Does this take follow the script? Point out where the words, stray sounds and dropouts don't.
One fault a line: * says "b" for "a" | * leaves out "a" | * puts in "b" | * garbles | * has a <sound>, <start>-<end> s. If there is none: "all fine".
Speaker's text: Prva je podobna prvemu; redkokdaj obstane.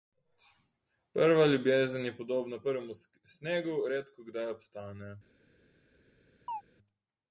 * puts in "ljubezen"
* puts in "snegu"
* has a chirp, 6.5-6.6 s